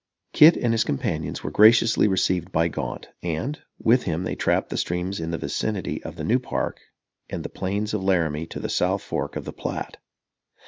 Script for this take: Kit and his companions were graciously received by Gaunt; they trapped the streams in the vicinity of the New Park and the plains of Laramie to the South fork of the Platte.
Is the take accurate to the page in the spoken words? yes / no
no